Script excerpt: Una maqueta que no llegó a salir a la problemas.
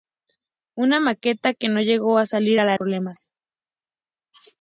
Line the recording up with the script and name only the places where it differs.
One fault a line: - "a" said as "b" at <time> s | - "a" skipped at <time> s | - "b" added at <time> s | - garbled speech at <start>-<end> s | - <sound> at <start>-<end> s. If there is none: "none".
none